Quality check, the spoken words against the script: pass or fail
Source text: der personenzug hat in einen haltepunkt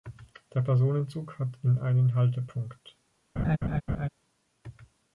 pass